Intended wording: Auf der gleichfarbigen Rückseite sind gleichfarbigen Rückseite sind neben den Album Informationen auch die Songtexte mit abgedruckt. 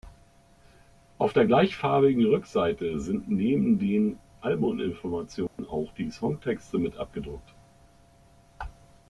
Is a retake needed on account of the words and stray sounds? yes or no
yes